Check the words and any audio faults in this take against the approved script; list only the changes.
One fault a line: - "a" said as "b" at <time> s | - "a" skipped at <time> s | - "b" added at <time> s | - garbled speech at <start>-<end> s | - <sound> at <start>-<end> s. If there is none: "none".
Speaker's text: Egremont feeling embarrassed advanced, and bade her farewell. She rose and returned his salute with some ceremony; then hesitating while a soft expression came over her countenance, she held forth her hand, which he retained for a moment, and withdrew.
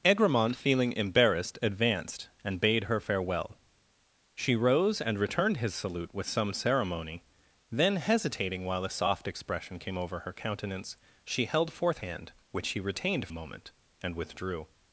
- "her" skipped at 12.0 s
- "for" skipped at 13.3 s